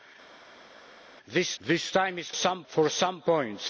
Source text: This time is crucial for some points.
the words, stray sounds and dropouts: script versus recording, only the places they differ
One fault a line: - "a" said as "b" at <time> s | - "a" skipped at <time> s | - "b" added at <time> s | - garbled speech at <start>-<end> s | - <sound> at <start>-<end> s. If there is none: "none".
- "this" added at 1.6 s
- "crucial" said as "some" at 2.3 s